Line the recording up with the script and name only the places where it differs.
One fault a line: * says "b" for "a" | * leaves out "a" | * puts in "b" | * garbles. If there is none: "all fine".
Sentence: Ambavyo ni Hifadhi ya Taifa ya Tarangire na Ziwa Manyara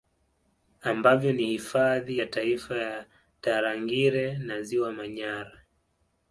all fine